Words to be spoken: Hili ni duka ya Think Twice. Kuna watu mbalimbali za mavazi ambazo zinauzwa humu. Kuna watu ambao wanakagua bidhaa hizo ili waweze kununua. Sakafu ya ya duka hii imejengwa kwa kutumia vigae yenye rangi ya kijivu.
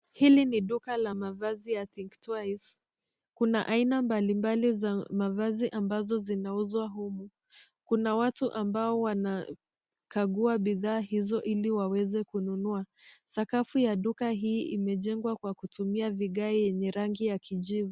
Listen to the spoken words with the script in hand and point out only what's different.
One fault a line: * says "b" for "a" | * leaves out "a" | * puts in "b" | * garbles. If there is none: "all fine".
* puts in "la mavazi"
* says "aina" for "watu"
* leaves out "ya"